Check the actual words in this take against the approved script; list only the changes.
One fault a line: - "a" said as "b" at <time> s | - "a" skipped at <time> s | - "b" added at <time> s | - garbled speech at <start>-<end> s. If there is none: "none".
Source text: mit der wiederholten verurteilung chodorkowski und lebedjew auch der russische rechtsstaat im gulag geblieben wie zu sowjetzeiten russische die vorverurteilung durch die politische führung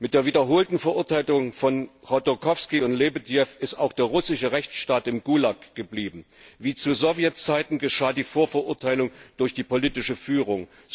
- "von" added at 1.5 s
- "ist" added at 3.6 s
- "russische" said as "geschah" at 7.8 s